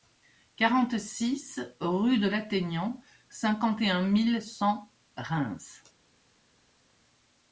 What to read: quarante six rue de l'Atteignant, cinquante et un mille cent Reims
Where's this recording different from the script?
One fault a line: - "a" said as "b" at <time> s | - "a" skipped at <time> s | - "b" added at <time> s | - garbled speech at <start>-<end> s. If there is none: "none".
none